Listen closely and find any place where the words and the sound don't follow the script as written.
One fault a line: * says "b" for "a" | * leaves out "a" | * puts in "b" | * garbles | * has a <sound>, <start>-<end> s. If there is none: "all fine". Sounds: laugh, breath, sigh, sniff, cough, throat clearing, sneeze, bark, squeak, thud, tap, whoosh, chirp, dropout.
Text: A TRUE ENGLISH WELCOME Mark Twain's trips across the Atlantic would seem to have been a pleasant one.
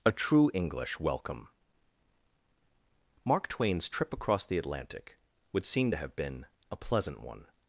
* says "trip" for "trips"